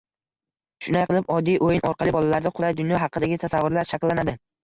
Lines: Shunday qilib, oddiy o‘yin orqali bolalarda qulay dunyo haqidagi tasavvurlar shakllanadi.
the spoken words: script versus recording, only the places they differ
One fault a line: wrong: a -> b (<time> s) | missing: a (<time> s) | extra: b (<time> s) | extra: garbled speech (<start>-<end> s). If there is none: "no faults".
no faults